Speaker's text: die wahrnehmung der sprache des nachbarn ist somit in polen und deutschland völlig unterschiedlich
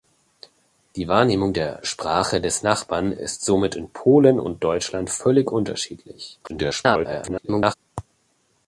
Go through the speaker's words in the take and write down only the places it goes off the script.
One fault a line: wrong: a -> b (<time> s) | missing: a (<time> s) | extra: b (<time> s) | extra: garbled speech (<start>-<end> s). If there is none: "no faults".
extra: garbled speech (6.4-7.7 s)